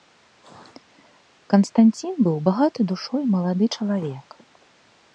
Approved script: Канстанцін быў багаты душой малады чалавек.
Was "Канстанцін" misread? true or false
false